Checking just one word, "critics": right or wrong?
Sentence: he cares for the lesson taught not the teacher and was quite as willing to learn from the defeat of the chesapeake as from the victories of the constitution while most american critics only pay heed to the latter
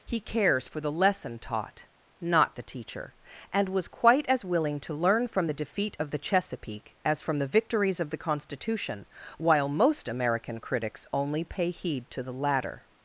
right